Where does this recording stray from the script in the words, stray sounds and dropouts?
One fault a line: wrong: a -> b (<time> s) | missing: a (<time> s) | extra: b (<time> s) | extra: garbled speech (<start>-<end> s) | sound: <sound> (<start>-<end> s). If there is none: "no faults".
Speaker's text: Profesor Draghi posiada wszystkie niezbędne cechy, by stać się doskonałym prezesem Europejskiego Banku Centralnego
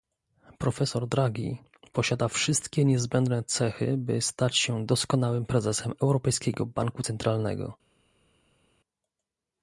no faults